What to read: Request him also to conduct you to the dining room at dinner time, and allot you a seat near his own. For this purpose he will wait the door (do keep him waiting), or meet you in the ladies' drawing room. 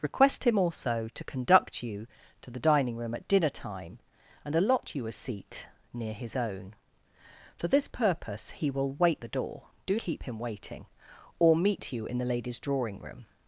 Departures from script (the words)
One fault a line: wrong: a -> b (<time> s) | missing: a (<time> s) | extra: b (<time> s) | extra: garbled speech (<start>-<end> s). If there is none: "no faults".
no faults